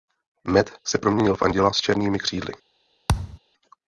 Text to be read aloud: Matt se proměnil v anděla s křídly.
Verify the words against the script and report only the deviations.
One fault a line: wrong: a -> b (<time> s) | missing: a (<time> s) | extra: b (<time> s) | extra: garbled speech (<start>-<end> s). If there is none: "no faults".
extra: černými (1.8 s)